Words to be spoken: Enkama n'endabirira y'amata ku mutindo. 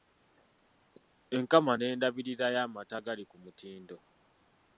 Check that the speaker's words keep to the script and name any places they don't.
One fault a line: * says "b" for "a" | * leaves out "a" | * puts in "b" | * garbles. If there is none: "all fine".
* puts in "agali"